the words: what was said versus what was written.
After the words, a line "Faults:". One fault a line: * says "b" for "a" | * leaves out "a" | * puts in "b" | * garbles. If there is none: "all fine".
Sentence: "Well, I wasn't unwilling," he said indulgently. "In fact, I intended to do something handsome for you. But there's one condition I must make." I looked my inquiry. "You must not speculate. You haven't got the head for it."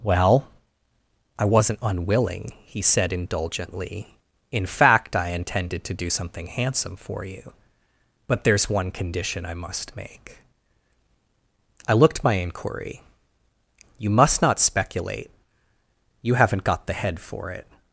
"Well, I wasn't unwilling," he said indulgently. "In fact, I intended to do something handsome for you. But there's one condition I must make." I looked my inquiry. "You must not speculate. You haven't got the head for it."
Faults:
all fine